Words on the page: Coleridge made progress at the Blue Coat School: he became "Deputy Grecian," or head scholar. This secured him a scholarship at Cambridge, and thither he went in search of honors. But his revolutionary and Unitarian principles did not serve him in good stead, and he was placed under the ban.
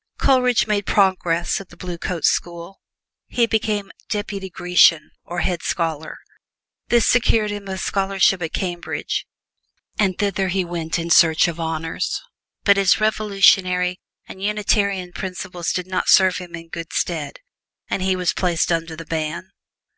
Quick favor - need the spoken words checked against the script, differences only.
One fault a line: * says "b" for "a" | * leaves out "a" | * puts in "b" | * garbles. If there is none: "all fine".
all fine